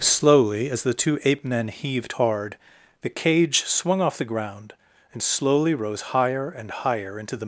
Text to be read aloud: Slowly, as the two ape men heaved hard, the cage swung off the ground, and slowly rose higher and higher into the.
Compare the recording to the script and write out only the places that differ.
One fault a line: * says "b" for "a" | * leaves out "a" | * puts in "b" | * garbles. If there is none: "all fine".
all fine